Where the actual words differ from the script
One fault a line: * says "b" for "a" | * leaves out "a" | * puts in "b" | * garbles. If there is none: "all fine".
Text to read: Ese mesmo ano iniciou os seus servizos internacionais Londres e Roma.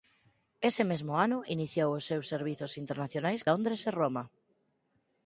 all fine